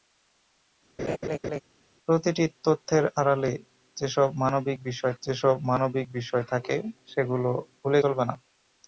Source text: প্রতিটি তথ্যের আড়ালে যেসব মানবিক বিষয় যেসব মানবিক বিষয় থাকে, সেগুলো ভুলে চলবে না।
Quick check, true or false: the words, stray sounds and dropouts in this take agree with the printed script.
false